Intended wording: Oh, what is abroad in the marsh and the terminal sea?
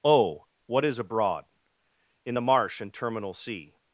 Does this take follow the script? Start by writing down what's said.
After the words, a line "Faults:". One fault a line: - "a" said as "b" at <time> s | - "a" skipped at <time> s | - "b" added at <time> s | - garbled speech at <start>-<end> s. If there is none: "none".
Oh, what is abroad in the marsh and terminal sea?
Faults:
- "the" skipped at 2.9 s